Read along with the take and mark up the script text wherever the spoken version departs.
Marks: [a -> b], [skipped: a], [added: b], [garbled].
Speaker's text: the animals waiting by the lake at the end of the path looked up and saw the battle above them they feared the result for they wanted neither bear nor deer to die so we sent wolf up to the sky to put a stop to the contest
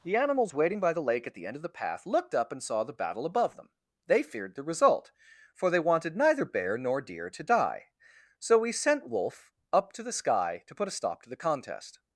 the animals waiting by the lake at the end of the path looked up and saw the battle above them they feared the result for they wanted neither bear nor deer to die so we sent wolf up to the sky to put a stop to the contest